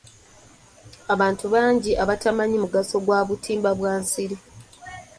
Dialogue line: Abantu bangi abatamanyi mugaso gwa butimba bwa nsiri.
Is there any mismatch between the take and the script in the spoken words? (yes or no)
no